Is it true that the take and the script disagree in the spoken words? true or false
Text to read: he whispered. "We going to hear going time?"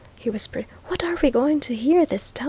true